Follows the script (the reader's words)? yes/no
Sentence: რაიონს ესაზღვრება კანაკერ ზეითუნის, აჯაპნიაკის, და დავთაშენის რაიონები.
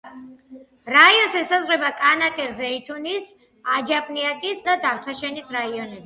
yes